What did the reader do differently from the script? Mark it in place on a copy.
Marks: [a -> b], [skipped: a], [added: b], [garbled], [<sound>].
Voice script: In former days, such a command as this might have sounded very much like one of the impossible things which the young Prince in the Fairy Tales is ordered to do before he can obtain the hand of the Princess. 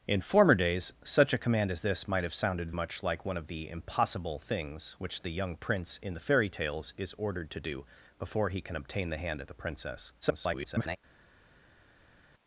In former days, such a command as this might have sounded [skipped: very] much like one of the impossible things which the young Prince in the Fairy Tales is ordered to do before he can obtain the hand of the Princess. [garbled]